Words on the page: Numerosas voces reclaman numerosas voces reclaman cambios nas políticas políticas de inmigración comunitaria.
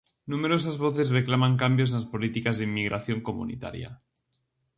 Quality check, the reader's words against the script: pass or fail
fail